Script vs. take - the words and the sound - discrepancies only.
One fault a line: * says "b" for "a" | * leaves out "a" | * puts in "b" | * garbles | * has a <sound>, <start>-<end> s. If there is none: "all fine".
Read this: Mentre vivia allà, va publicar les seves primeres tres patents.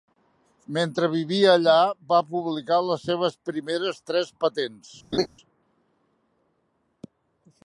* has a laugh, 5.1-5.3 s